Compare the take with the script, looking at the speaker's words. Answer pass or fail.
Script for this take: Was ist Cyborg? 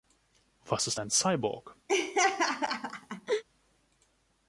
fail